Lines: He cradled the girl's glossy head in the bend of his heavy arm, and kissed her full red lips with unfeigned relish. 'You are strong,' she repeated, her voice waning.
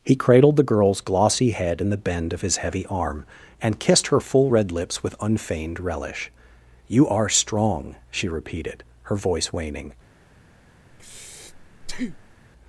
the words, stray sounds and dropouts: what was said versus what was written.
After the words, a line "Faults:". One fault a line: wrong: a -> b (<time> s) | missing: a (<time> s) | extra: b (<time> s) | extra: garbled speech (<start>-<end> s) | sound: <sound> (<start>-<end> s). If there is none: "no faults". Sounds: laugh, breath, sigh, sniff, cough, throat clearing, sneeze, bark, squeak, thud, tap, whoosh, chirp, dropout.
He cradled the girl's glossy head in the bend of his heavy arm, and kissed her full red lips with unfeigned relish. 'You are strong,' she repeated, her voice waning.
Faults:
sound: breath (10.9-12.4 s)